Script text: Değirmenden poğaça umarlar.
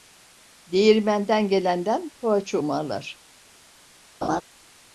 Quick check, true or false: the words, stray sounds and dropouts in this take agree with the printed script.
false